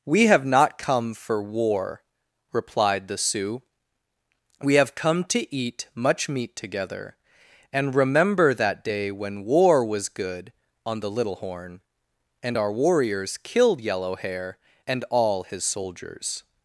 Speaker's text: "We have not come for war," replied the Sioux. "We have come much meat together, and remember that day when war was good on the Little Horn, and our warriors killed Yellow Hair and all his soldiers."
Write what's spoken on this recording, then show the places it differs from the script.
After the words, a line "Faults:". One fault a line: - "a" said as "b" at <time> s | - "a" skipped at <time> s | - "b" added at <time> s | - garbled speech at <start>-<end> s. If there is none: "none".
"We have not come for war," replied the Sioux. "We have come to eat much meat together, and remember that day when war was good on the Little Horn, and our warriors killed Yellow Hair and all his soldiers."
Faults:
- "to eat" added at 5.2 s